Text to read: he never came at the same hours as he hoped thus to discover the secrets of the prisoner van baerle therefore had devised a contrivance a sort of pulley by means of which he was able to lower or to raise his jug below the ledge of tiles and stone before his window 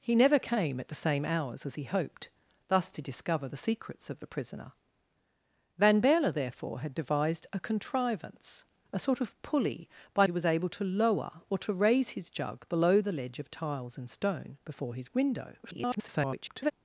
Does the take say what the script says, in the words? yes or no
no